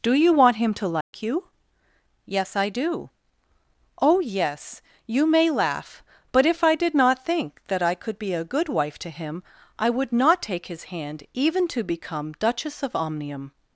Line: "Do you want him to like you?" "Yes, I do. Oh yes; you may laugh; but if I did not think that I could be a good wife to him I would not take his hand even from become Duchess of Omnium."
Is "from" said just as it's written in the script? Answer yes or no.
no